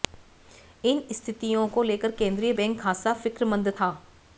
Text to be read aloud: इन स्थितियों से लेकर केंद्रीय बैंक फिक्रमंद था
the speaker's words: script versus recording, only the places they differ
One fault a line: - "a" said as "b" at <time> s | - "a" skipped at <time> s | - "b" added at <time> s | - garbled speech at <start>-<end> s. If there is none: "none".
- "से" said as "को" at 1.7 s
- "खासा" added at 2.8 s